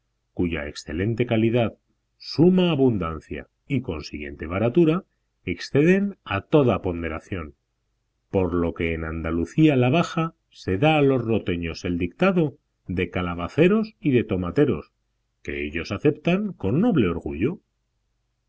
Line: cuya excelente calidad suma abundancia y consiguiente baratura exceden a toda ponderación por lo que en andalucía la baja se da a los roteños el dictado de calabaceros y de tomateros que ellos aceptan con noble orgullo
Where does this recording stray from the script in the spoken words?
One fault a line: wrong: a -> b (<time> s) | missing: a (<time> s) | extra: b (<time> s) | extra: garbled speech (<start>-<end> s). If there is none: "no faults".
no faults